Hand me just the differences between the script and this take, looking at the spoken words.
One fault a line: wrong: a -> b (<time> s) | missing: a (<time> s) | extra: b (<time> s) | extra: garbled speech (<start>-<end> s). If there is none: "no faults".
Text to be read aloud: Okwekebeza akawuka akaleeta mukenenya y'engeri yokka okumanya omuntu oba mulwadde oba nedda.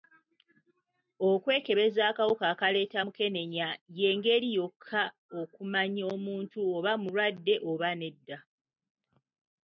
no faults